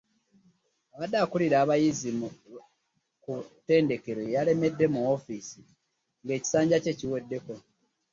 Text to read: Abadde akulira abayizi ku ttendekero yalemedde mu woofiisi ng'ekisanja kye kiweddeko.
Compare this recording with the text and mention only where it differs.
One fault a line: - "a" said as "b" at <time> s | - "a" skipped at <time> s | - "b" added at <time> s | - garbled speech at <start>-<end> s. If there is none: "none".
none